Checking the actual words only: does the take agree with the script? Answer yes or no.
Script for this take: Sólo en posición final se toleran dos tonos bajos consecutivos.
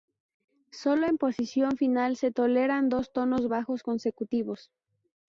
yes